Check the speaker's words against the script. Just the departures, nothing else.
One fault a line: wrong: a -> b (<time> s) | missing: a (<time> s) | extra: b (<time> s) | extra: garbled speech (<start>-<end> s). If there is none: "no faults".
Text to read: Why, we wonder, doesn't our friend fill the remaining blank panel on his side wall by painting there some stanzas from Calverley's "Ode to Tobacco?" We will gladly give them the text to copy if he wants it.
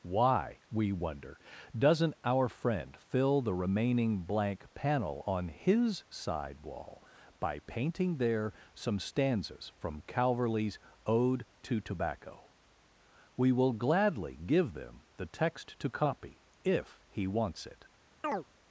no faults